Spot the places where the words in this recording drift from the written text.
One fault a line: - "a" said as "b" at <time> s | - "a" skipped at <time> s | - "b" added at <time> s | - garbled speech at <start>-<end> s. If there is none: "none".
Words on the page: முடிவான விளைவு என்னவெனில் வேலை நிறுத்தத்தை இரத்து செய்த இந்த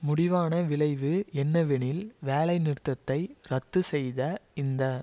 none